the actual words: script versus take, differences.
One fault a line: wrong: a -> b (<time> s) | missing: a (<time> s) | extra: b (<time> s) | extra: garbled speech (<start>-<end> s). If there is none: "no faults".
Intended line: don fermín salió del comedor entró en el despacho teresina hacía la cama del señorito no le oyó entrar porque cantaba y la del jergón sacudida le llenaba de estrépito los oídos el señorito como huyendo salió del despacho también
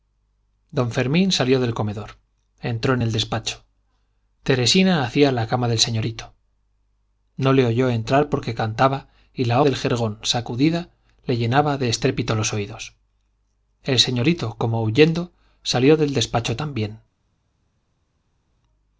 no faults